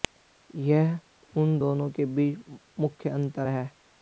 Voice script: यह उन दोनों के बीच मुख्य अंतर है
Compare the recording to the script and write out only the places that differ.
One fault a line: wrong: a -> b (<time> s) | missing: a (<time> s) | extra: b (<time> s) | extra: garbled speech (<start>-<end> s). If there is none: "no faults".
no faults